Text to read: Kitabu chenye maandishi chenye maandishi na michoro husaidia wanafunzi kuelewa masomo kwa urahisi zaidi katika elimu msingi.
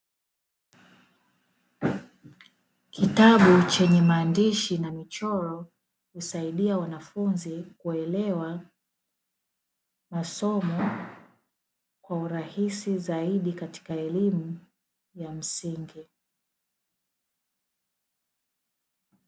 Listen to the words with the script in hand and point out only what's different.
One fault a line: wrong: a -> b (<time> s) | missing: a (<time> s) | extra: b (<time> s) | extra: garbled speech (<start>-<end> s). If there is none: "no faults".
missing: chenye maandishi (4.8 s)
extra: ya (15.1 s)